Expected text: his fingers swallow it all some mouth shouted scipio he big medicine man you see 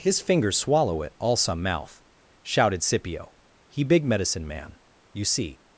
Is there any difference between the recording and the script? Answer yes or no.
no